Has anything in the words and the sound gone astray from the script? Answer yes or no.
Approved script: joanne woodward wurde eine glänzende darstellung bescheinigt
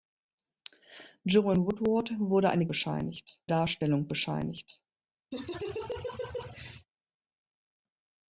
yes